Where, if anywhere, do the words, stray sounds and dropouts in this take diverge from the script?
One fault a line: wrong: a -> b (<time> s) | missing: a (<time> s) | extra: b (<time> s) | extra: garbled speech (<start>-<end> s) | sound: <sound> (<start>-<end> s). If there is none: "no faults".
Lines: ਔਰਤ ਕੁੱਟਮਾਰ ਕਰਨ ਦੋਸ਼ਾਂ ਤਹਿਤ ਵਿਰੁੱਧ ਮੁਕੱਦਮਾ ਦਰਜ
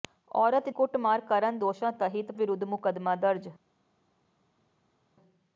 no faults